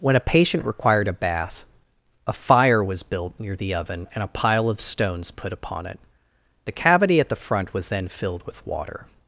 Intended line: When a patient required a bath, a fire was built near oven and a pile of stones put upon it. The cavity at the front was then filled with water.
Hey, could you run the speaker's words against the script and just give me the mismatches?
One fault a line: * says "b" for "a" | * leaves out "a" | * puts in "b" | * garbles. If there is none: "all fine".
* puts in "the"